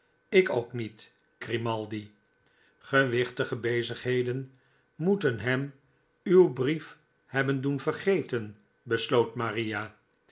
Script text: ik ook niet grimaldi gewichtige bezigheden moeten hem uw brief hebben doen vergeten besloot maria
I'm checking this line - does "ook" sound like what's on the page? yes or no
yes